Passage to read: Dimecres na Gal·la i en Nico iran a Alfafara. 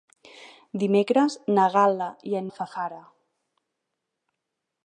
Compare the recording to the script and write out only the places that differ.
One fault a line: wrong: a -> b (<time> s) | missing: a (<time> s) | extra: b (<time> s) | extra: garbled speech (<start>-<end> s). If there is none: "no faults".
missing: Nico iran a (2.5 s)